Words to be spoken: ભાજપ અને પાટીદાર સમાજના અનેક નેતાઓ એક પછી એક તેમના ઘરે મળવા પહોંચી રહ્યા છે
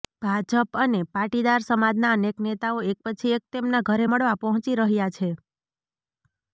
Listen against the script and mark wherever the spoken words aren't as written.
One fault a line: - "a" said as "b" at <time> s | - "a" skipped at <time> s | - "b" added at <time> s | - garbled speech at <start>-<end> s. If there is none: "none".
none